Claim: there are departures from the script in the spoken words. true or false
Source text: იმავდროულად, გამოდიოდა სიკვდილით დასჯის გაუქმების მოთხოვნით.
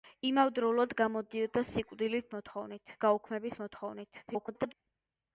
true